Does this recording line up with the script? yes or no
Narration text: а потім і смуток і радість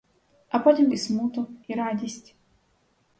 yes